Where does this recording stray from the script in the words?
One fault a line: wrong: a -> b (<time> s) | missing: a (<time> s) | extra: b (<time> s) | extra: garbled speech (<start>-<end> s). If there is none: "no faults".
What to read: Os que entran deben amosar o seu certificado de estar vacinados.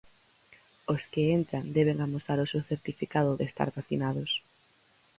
no faults